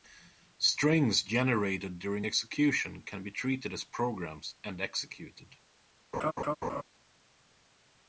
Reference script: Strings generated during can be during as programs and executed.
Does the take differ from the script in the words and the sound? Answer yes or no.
yes